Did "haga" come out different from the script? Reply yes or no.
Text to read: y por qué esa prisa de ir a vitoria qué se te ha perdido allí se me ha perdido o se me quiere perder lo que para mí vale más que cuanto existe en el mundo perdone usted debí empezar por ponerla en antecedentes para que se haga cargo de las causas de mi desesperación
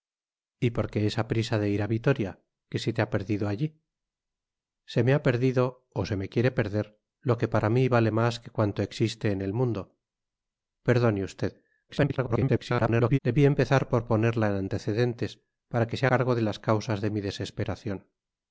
yes